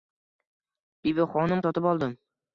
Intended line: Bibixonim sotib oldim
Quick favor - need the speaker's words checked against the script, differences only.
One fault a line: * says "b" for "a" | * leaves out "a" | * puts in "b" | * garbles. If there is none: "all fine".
all fine